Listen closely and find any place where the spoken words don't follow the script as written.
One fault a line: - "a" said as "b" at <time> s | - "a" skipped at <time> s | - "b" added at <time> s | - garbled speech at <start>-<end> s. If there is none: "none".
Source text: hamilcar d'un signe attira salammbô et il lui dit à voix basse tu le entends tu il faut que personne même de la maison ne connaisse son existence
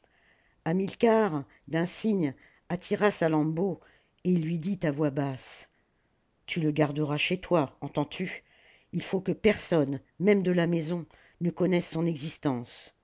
- "garderas chez toi" added at 6.7 s